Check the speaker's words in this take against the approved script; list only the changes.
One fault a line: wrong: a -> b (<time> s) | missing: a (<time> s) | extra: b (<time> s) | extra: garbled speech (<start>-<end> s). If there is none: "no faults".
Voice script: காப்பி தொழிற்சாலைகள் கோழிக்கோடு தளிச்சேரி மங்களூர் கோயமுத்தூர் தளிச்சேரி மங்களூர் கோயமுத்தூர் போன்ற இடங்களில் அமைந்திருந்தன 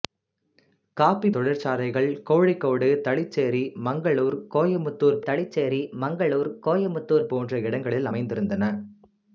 no faults